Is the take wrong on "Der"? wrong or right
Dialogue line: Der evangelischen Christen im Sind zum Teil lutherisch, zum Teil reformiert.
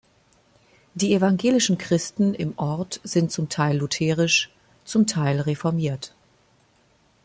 wrong